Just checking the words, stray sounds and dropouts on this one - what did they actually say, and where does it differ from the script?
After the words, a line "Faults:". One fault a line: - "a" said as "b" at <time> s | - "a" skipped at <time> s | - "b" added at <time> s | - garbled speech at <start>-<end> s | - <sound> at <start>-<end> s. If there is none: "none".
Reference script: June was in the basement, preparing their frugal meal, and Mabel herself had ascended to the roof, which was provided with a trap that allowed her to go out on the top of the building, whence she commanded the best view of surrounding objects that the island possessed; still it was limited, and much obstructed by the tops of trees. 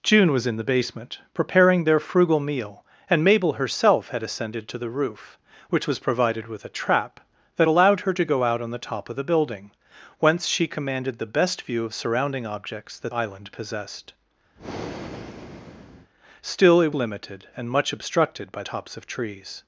June was in the basement, preparing their frugal meal, and Mabel herself had ascended to the roof, which was provided with a trap that allowed her to go out on the top of the building, whence she commanded the best view of surrounding objects that island possessed; still it limited, and much obstructed by tops of trees.
Faults:
- "the" skipped at 13.1 s
- breath at 14.6-16.1 s
- "was" skipped at 16.9 s
- "the" skipped at 18.6 s